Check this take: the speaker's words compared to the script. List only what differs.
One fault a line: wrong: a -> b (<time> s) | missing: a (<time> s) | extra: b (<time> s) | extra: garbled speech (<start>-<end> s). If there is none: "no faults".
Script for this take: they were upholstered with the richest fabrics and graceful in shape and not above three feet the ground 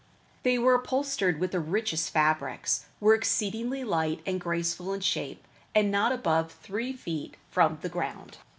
extra: were exceedingly light (3.0 s)
extra: from (7.5 s)